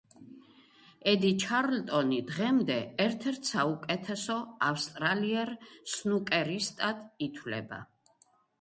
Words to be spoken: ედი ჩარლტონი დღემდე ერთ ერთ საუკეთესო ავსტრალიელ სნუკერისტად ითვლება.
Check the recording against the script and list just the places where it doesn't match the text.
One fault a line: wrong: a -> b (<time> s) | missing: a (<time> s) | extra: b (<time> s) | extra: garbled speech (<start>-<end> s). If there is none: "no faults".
no faults